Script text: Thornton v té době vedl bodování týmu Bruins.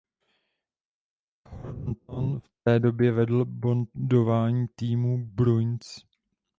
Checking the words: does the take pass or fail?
pass